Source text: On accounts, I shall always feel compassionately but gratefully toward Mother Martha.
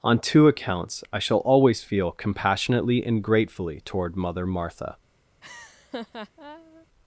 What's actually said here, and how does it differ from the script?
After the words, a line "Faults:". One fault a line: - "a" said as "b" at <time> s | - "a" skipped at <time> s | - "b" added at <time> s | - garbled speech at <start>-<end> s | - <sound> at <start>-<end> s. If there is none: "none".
On two accounts, I shall always feel compassionately and gratefully toward Mother Martha.
Faults:
- "two" added at 0.2 s
- "but" said as "and" at 3.0 s
- laugh at 5.4-6.9 s